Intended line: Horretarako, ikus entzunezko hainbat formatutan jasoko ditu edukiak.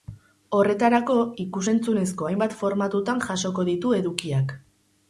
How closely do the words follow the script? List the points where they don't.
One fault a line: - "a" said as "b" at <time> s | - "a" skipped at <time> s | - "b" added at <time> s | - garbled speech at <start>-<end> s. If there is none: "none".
none